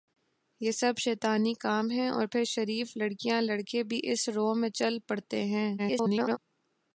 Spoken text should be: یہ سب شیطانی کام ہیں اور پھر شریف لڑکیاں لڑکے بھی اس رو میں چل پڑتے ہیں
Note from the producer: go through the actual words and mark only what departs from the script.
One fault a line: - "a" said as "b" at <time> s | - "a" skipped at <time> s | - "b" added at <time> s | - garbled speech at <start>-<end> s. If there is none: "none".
- garbled speech at 5.8-6.4 s